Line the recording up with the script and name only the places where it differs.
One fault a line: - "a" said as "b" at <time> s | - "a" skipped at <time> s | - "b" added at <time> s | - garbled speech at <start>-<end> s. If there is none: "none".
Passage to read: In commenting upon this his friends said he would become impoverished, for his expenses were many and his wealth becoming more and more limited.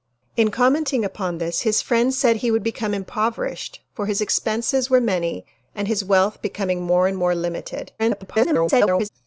- garbled speech at 8.0-9.1 s